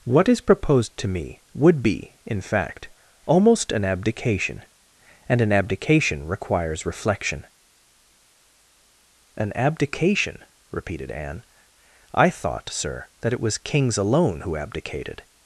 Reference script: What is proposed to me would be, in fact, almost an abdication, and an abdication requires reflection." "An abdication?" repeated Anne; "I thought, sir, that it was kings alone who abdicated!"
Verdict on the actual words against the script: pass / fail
pass